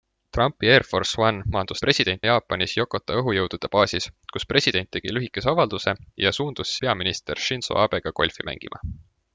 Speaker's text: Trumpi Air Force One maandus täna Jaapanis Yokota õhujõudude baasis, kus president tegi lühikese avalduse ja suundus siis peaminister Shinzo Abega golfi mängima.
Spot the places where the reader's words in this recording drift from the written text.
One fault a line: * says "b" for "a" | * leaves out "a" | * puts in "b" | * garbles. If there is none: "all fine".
* says "president" for "täna"
* leaves out "siis"